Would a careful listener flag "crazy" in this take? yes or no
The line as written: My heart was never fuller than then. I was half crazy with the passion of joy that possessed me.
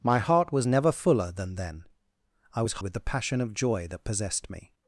yes